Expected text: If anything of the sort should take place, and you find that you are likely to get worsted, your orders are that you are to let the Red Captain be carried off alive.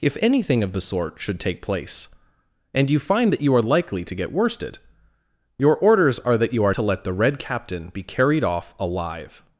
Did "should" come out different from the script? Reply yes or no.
no